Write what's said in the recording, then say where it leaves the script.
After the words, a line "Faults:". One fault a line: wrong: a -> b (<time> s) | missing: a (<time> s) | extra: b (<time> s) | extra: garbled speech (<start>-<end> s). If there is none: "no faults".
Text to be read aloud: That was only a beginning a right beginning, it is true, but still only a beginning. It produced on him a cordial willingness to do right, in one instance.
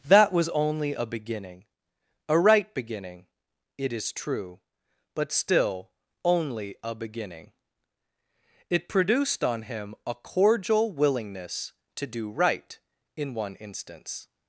That was only a beginning a right beginning, it is true, but still only a beginning. It produced on him a cordial willingness to do right, in one instance.
Faults:
no faults